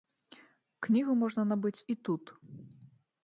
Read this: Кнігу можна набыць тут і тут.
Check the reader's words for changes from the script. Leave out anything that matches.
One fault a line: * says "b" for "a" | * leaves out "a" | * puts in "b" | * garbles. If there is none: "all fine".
* leaves out "тут"